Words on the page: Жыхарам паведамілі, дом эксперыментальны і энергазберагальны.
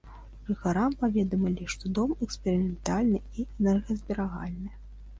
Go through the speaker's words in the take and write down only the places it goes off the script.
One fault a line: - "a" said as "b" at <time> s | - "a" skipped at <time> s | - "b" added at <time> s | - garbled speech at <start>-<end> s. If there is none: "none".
- "што" added at 1.8 s